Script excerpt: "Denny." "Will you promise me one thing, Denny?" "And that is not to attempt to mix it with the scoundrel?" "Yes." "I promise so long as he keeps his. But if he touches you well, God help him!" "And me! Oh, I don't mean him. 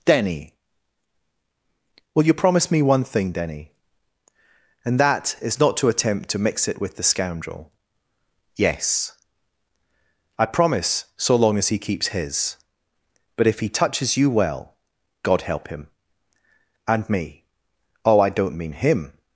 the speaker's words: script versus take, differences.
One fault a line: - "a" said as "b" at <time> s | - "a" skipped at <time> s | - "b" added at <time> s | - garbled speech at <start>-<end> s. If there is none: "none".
none